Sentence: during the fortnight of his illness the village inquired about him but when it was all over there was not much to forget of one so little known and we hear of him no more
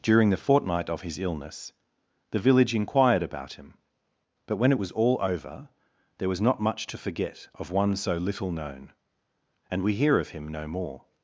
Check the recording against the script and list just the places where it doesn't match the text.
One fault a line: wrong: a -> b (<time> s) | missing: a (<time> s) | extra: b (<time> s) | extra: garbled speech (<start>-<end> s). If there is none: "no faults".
no faults